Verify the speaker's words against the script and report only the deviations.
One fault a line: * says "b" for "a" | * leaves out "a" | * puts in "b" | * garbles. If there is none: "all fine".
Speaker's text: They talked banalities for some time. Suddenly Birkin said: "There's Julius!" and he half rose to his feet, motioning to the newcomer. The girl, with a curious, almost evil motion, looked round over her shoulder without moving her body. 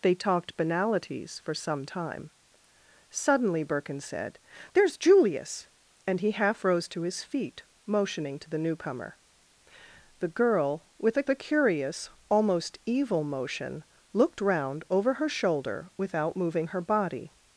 * puts in "a"